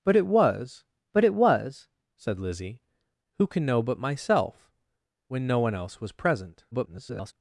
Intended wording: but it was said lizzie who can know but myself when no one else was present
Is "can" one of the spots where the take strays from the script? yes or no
no